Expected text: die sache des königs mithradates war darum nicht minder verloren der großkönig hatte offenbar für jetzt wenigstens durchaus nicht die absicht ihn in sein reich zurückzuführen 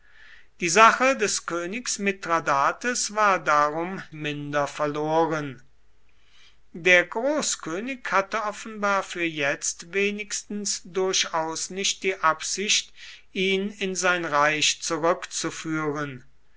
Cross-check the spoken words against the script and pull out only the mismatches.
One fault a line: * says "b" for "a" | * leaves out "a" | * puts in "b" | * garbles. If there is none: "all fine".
* leaves out "nicht"